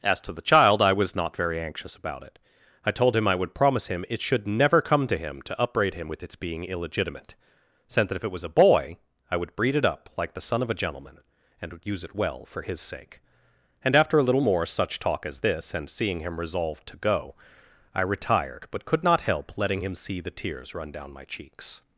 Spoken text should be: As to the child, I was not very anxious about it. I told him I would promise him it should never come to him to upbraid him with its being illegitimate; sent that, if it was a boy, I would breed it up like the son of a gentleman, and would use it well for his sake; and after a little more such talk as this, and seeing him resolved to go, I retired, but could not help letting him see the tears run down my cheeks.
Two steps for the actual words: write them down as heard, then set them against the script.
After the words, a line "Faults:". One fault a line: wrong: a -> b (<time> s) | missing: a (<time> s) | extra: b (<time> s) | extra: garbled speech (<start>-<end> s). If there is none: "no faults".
As to the child, I was not very anxious about it. I told him I would promise him it should never come to him to upbraid him with its being illegitimate; sent that, if it was a boy, I would breed it up like the son of a gentleman, and would use it well for his sake; and after a little more such talk as this, and seeing him resolved to go, I retired, but could not help letting him see the tears run down my cheeks.
Faults:
no faults